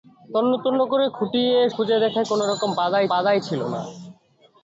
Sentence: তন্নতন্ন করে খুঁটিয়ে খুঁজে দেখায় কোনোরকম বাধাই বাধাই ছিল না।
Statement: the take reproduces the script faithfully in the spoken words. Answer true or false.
true